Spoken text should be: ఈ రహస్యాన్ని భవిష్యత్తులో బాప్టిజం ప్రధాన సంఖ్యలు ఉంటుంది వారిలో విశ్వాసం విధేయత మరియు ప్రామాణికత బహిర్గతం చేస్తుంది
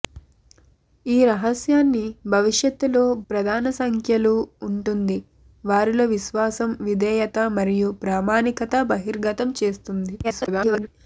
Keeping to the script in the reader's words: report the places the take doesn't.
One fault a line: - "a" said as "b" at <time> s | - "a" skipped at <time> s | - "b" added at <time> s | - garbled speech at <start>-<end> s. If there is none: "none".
- "బాప్టిజం" skipped at 3.0 s
- garbled speech at 10.2-10.9 s